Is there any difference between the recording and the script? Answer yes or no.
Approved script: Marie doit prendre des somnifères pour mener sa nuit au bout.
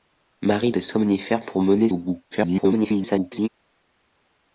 yes